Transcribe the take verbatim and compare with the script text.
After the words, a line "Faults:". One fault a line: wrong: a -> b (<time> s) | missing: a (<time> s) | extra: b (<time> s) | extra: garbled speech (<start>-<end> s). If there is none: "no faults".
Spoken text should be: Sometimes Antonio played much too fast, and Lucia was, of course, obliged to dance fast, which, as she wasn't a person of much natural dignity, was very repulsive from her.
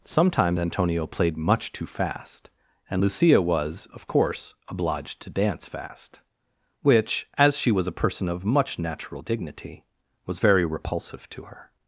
Sometimes Antonio played much too fast, and Lucia was, of course, obliged to dance fast, which, as she was a person of much natural dignity, was very repulsive to her.
Faults:
wrong: wasn't -> was (7.7 s)
wrong: from -> to (11.3 s)